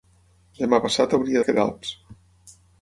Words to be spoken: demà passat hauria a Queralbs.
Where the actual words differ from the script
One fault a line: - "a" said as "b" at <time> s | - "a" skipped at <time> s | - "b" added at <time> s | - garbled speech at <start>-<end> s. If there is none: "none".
none